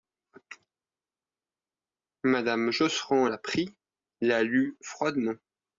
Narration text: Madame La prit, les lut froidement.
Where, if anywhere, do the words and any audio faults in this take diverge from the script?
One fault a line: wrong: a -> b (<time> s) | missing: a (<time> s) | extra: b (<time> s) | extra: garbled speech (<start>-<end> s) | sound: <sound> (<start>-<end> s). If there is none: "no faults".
extra: Josserand (2.7 s)
wrong: les -> la (4.2 s)